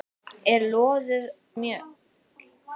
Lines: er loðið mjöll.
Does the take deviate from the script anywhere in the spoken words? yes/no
no